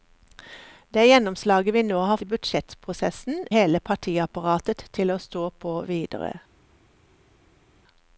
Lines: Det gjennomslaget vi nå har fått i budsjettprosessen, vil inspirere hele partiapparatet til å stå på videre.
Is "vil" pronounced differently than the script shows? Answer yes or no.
yes